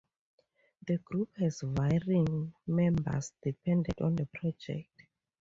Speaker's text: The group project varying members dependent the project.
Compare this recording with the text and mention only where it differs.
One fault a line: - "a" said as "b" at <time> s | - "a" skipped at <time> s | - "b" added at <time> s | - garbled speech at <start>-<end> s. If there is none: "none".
- "project" said as "has" at 1.4 s
- "on" added at 4.0 s